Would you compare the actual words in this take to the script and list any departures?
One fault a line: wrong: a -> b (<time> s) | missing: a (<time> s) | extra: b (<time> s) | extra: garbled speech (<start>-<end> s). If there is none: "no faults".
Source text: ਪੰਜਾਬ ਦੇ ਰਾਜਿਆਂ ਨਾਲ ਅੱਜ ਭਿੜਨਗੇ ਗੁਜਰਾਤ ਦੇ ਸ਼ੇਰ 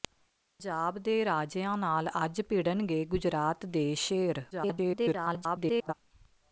extra: garbled speech (4.5-5.9 s)